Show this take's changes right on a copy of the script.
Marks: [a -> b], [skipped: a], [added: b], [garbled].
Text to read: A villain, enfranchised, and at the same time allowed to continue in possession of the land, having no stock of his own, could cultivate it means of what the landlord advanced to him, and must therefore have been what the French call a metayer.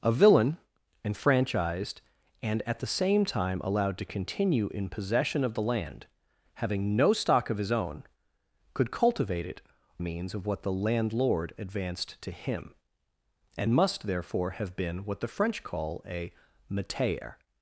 A villain, enfranchised, and at the same time allowed to continue in possession of the land, having no stock of his own, could cultivate it means of what the landlord advanced to him, and must therefore have been what the French call a metayer.